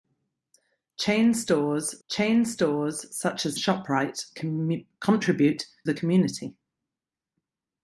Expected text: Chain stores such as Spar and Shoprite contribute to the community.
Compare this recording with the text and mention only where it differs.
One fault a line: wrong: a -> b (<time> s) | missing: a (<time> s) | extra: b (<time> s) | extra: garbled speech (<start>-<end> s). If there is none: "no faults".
extra: chain stores (2.1 s)
missing: Spar and (3.6 s)
missing: to (5.7 s)